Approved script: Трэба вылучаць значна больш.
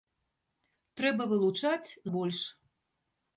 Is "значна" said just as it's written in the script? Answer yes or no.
no